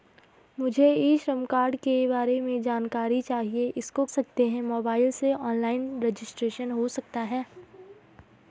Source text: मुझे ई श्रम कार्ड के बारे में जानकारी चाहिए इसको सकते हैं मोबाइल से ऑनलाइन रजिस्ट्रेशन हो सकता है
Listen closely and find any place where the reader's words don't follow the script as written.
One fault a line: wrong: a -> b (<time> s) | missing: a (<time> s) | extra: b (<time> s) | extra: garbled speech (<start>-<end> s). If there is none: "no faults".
no faults